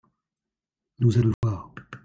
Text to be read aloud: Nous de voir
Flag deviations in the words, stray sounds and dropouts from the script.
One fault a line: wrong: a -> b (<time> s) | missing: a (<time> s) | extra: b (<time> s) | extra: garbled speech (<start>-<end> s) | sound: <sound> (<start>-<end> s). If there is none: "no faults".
sound: dropout (1.3-1.4 s)